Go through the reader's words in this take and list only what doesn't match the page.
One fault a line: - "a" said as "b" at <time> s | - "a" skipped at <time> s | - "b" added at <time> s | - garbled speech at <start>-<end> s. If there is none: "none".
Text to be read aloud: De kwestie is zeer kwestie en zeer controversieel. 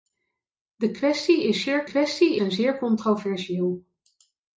none